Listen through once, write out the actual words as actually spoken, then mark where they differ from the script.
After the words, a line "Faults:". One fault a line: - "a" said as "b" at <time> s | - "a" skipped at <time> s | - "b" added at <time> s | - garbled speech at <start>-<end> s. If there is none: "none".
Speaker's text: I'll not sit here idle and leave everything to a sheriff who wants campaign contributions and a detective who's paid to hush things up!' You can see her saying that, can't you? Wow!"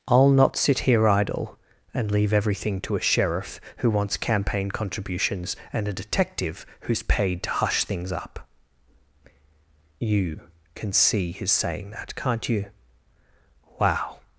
I'll not sit here idle and leave everything to a sheriff who wants campaign contributions and a detective who's paid to hush things up!' You can see his saying that, can't you? Wow!"
Faults:
- "her" said as "his" at 11.3 s